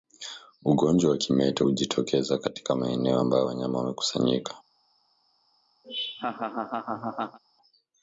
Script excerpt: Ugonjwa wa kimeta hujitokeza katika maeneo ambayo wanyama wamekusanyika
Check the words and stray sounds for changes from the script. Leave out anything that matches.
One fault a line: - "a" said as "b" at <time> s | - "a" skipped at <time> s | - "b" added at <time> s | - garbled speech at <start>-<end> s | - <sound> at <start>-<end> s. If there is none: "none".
- laugh at 5.8-7.4 s